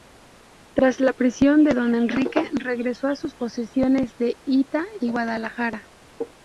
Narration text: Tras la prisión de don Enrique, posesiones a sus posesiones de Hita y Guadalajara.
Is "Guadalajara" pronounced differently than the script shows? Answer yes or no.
no